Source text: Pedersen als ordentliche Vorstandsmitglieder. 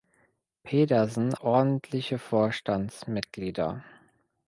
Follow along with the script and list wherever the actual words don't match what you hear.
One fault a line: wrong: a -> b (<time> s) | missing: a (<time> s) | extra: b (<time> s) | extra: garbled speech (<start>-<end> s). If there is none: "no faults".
missing: als (1.4 s)